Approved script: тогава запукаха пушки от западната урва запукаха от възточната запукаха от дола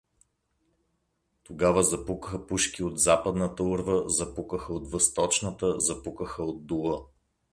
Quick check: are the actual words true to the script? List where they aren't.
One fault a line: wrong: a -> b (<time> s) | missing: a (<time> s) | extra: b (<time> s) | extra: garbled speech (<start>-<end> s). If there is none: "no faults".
no faults